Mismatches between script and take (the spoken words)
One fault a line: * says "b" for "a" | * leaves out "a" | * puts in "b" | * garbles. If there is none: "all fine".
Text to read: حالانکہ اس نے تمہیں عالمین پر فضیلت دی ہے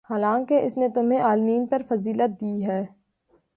all fine